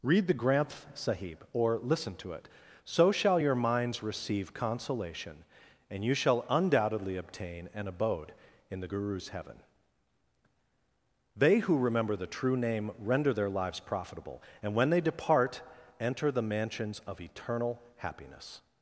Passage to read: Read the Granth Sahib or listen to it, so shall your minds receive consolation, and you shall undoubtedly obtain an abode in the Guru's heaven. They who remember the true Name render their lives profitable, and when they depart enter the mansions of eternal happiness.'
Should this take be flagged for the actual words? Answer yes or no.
no